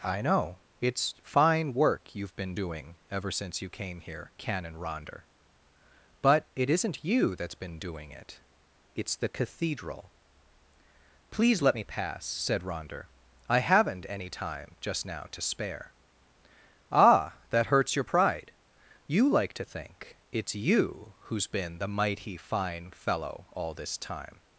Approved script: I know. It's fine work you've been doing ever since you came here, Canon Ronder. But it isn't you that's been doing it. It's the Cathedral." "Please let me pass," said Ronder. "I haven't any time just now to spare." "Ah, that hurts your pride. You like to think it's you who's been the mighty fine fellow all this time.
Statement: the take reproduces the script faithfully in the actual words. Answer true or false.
true